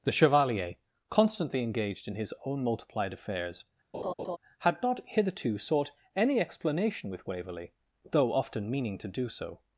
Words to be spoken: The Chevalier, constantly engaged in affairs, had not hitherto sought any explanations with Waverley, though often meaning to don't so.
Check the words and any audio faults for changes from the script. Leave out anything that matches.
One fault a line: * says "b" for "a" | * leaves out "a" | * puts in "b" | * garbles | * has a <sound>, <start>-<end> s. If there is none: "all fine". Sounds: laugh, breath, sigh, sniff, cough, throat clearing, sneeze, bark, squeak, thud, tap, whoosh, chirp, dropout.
* puts in "his own multiplied"
* has a laugh, 3.9-4.4 s
* says "explanation" for "explanations"
* says "do" for "don't"